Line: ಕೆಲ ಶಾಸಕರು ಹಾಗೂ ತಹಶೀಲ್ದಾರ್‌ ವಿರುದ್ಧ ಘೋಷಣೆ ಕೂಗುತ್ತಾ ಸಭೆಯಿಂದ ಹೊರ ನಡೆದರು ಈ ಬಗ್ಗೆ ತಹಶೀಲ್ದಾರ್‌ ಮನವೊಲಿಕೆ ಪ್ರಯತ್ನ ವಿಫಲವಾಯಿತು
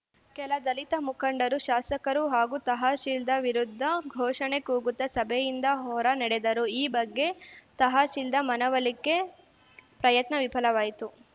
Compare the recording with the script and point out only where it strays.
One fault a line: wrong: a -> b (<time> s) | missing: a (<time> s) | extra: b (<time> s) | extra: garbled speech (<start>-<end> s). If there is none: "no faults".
extra: ದಲಿತ ಮುಖಂಡರು (0.6 s)